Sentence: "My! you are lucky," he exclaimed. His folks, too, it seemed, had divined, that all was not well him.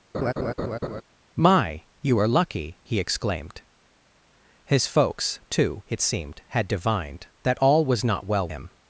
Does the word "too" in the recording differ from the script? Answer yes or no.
no